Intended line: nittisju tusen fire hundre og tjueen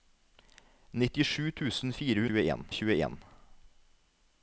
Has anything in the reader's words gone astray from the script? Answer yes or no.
yes